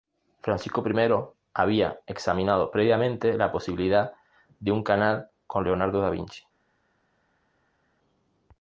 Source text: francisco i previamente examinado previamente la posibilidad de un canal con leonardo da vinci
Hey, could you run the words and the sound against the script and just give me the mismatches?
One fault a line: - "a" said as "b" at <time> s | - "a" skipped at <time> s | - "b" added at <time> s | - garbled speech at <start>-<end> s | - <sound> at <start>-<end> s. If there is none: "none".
- "previamente" said as "había" at 1.5 s